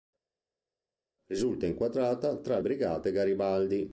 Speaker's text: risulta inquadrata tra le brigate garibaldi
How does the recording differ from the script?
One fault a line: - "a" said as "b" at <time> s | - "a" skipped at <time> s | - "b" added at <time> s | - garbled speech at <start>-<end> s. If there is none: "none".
- "le" skipped at 2.6 s